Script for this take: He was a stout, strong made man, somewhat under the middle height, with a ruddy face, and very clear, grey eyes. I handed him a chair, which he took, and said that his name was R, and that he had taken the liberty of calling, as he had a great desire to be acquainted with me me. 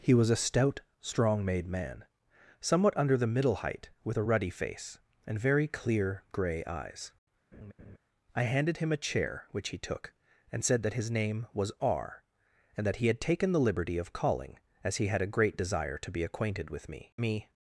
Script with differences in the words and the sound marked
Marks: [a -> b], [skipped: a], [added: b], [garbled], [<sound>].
He was a stout, strong made man, somewhat under the middle height, with a ruddy face, and very clear, grey eyes. [laugh] I handed him a chair, which he took, and said that his name was R, and that he had taken the liberty of calling, as he had a great desire to be acquainted with me me.